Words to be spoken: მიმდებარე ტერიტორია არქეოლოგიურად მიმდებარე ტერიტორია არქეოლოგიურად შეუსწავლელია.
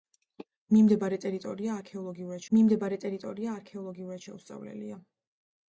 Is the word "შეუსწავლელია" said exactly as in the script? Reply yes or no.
yes